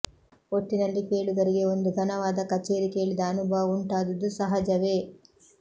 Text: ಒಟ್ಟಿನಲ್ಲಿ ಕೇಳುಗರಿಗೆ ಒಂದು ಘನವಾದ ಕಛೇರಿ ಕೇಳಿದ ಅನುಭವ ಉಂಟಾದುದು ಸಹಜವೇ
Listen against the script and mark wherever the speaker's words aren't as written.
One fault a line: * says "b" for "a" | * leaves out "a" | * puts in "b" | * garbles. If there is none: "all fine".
all fine